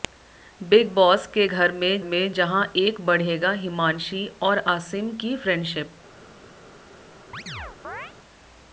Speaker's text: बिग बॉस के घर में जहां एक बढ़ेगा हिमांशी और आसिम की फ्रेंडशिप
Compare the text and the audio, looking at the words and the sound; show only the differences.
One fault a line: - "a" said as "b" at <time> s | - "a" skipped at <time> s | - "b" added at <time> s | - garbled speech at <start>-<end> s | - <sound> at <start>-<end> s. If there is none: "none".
- "में" added at 2.0 s
- chirp at 7.3-8.1 s